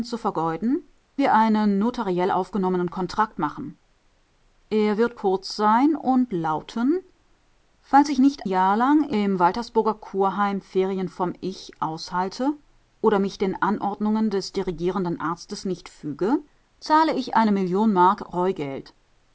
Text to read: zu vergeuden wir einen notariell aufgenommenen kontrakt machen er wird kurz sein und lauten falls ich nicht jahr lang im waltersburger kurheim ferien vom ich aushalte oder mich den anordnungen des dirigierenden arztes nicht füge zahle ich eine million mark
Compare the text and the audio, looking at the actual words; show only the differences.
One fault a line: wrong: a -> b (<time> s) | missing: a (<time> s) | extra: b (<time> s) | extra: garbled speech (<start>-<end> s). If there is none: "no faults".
no faults